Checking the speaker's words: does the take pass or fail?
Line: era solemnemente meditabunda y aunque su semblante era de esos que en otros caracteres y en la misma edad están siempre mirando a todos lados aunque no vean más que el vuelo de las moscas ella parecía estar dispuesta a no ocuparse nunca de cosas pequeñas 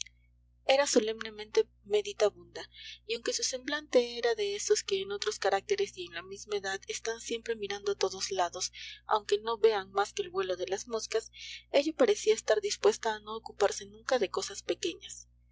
pass